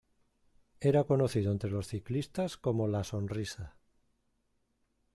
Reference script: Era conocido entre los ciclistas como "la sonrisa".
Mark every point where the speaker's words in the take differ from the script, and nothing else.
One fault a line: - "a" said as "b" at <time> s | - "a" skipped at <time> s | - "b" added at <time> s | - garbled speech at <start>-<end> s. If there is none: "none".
none